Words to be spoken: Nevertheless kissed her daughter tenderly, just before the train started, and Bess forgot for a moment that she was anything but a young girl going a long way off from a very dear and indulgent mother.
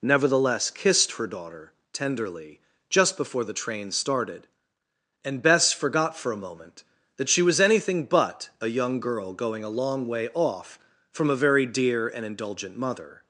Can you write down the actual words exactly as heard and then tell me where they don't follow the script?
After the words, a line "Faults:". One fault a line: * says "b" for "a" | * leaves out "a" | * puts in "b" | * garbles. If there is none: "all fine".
Nevertheless kissed her daughter tenderly, just before the train started, and Bess forgot for a moment that she was anything but a young girl going a long way off from a very dear and indulgent mother.
Faults:
all fine